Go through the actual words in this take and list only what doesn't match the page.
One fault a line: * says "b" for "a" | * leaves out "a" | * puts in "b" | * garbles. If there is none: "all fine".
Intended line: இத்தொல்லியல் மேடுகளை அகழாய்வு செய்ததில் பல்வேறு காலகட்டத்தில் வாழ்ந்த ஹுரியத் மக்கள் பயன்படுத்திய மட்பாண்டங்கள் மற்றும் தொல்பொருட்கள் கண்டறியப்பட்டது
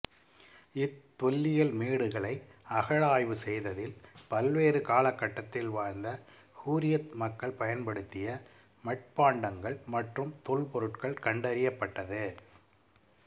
all fine